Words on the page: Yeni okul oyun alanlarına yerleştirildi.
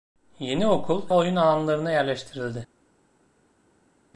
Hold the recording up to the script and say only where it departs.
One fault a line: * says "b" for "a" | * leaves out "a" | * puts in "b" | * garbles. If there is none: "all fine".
all fine